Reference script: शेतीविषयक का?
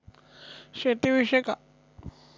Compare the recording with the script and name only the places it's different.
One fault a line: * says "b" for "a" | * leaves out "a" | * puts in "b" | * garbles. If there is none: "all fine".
all fine